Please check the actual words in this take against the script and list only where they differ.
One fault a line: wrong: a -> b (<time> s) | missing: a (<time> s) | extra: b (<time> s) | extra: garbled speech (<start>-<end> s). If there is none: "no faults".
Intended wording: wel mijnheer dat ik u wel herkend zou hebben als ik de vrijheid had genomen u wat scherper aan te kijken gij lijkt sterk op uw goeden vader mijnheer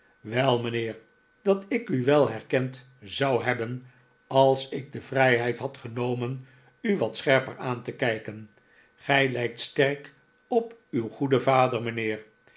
no faults